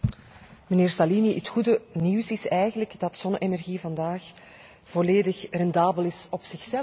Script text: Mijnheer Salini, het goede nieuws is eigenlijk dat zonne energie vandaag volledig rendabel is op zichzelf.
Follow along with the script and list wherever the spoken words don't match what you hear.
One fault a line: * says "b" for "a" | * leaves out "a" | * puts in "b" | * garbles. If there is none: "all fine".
all fine